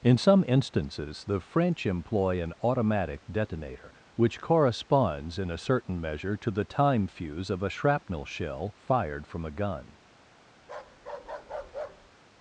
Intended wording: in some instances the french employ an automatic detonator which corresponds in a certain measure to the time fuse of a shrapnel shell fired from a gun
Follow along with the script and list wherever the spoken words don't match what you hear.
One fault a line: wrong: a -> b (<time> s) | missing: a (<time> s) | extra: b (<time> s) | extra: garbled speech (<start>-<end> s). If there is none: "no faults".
no faults